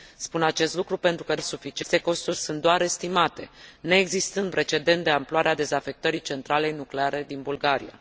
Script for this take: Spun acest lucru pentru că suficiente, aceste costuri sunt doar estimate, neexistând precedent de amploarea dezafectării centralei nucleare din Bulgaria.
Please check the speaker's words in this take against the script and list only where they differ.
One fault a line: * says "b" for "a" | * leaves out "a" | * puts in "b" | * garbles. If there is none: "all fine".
all fine